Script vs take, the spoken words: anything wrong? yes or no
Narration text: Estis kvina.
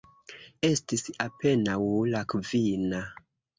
yes